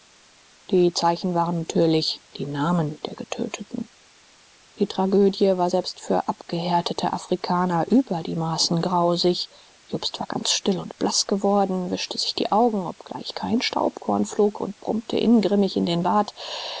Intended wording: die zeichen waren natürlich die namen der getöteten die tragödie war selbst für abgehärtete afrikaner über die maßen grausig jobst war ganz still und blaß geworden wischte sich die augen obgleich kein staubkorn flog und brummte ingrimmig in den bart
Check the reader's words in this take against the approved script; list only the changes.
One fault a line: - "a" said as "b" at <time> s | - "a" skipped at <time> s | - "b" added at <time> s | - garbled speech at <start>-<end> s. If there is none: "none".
none